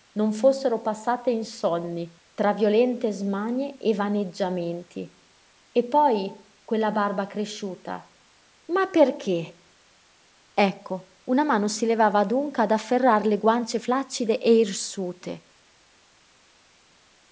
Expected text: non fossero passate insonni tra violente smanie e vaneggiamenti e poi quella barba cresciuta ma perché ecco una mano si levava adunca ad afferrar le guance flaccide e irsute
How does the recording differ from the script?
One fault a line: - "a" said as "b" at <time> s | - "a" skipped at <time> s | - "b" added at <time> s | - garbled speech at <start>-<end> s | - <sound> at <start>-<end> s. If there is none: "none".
none